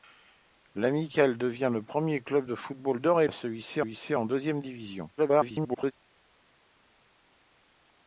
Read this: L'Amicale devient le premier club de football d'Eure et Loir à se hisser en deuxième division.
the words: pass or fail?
fail